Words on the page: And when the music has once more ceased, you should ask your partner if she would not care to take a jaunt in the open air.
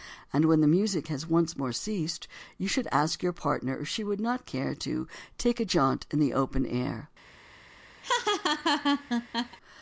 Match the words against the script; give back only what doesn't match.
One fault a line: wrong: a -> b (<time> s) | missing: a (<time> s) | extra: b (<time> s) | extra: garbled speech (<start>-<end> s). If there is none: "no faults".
no faults